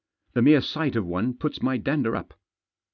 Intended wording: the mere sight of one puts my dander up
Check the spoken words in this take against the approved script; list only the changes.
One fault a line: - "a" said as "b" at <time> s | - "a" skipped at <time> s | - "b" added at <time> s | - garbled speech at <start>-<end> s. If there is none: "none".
none